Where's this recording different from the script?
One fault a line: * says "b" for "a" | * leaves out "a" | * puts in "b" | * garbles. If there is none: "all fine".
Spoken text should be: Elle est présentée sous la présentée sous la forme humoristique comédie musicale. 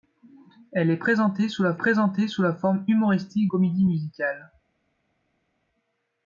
all fine